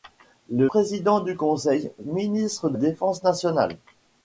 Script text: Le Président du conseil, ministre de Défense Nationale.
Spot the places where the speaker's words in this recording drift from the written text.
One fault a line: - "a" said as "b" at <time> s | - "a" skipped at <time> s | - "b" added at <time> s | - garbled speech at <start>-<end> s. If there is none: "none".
none